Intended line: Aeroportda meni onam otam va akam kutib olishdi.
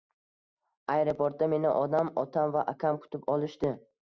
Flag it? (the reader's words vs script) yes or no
no